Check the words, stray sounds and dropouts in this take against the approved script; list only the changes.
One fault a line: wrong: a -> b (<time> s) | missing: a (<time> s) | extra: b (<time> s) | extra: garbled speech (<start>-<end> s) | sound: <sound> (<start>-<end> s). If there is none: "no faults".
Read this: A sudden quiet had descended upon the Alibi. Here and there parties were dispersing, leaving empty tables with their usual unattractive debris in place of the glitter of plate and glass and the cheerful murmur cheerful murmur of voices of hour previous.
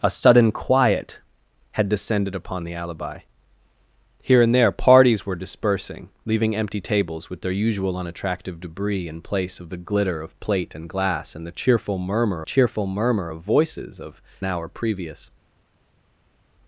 no faults